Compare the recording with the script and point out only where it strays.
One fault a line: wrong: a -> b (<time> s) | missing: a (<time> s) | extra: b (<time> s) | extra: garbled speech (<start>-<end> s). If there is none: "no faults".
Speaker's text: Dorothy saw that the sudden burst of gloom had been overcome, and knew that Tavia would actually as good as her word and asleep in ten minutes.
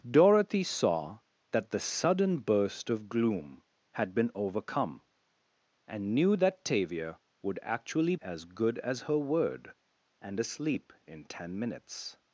no faults